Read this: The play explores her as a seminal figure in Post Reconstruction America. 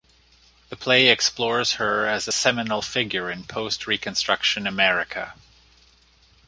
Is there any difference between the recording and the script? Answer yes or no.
no